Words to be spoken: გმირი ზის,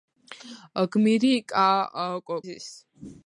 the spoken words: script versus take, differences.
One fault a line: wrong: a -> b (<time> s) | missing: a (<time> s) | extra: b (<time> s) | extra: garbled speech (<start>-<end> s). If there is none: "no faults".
no faults